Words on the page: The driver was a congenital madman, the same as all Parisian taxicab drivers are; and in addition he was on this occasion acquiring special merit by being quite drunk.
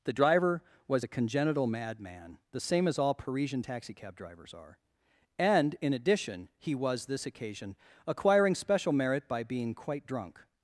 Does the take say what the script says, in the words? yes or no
no